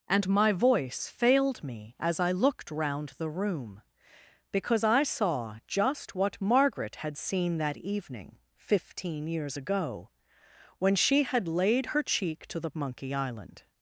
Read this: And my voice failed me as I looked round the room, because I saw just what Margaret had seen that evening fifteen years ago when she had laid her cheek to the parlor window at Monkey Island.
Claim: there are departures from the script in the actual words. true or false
true